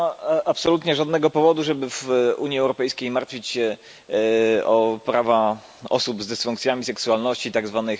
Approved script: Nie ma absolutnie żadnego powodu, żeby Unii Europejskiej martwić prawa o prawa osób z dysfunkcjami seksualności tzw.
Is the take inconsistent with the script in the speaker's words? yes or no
yes